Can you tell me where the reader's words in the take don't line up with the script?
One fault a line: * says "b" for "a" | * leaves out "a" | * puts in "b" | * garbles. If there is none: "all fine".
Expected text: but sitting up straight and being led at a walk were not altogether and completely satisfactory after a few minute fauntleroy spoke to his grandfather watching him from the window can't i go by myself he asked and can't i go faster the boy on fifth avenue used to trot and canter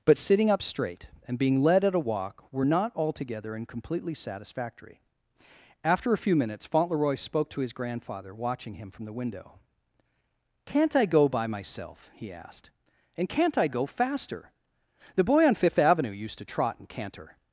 * says "minutes" for "minute"